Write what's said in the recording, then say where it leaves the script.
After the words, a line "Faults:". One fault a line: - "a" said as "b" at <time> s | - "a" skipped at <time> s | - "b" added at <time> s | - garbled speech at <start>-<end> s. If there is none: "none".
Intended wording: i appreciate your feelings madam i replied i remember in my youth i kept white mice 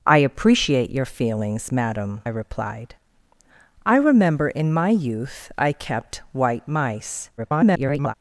i appreciate your feelings madam replied i remember in my youth i kept white mice [garbled]
Faults:
- "i" skipped at 2.2 s
- garbled speech at 7.4-8.1 s